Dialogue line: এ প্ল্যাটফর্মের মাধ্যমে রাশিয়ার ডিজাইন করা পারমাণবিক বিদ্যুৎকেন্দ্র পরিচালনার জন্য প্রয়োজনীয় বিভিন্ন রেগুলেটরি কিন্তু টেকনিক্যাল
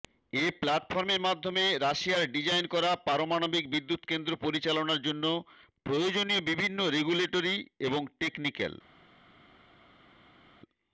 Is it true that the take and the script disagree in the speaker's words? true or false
true